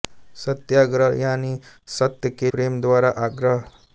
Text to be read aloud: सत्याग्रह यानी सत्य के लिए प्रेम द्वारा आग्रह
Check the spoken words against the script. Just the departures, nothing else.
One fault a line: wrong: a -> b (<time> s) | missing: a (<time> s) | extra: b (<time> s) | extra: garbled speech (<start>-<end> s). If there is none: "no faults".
missing: लिए (2.5 s)